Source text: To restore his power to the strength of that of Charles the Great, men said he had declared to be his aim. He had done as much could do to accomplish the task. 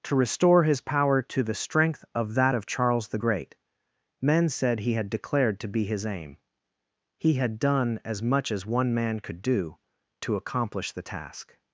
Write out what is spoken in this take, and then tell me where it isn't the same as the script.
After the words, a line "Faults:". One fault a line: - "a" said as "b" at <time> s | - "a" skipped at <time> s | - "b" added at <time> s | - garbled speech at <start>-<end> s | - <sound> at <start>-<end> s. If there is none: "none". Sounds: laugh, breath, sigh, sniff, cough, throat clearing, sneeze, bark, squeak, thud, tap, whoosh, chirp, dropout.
To restore his power to the strength of that of Charles the Great, men said he had declared to be his aim. He had done as much as one man could do to accomplish the task.
Faults:
- "as one man" added at 8.5 s